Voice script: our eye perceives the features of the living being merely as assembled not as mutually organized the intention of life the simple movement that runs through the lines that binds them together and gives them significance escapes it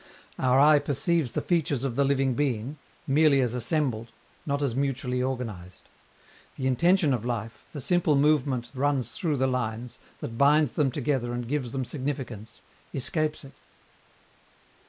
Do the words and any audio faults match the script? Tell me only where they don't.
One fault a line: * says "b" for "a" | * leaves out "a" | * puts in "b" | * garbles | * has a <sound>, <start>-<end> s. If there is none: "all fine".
* leaves out "that"